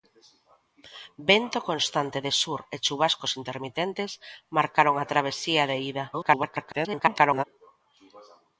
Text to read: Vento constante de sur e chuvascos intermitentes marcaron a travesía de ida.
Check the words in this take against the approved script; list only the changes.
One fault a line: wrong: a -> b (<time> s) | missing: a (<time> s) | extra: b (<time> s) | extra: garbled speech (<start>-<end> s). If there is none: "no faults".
extra: garbled speech (6.1-7.4 s)